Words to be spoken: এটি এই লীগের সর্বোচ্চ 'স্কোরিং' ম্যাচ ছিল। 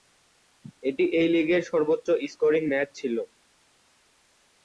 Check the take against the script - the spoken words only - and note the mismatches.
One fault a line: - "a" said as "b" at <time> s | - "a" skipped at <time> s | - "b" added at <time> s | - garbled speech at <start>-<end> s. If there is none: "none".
none